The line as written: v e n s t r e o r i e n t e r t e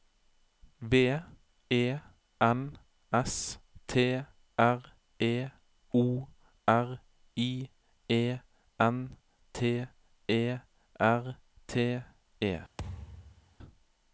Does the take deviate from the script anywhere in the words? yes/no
no